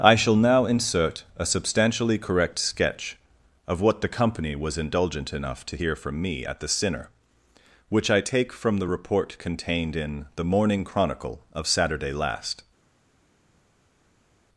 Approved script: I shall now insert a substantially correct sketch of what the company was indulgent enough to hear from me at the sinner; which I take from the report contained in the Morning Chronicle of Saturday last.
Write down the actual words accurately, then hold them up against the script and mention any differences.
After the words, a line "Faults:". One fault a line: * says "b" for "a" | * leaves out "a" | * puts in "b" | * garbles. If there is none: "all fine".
I shall now insert a substantially correct sketch of what the company was indulgent enough to hear from me at the sinner; which I take from the report contained in the Morning Chronicle of Saturday last.
Faults:
all fine